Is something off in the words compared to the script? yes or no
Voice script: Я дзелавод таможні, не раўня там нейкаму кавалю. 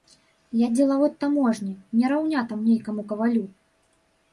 no